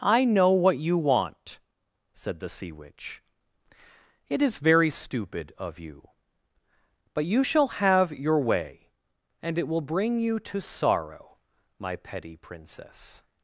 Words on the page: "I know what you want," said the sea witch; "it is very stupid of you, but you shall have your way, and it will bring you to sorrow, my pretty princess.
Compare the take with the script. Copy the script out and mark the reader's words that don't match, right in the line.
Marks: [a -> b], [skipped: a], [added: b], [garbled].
"I know what you want," said the sea witch; "it is very stupid of you, but you shall have your way, and it will bring you to sorrow, my [pretty -> petty] princess.